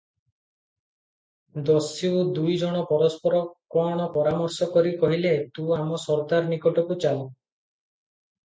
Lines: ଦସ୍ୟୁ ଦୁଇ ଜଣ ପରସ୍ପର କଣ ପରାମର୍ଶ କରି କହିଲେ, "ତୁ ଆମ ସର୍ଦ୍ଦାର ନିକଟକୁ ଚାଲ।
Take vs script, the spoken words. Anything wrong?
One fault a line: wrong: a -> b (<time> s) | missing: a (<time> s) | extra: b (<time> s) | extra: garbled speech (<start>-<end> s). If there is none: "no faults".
no faults